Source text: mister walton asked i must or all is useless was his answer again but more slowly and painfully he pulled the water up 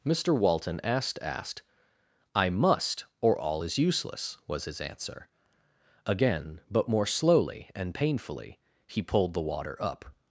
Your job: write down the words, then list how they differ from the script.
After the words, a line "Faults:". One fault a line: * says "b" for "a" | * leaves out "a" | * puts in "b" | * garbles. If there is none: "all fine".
mister walton asked asked i must or all is useless was his answer again but more slowly and painfully he pulled the water up
Faults:
* puts in "asked"